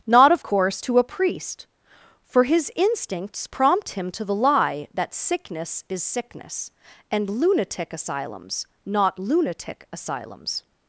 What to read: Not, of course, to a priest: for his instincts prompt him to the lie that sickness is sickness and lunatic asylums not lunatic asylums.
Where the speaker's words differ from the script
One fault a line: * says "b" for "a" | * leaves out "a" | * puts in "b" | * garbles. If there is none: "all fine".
all fine